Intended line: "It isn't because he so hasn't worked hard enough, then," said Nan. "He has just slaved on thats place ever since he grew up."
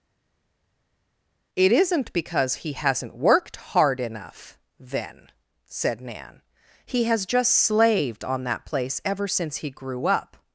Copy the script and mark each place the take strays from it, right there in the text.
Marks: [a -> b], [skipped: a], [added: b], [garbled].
"It isn't because he [skipped: so] hasn't worked hard enough, then," said Nan. "He has just slaved on [thats -> that] place ever since he grew up."